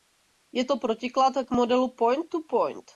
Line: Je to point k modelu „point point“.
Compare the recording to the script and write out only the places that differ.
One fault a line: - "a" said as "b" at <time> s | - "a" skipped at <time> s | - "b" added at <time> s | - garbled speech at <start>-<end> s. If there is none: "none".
- "point" said as "protiklad" at 0.8 s
- "to" added at 2.3 s